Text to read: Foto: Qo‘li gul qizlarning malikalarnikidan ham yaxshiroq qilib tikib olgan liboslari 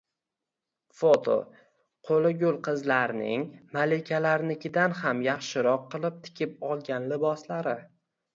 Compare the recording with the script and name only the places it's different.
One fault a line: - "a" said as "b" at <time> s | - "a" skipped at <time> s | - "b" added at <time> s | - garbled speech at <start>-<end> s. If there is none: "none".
none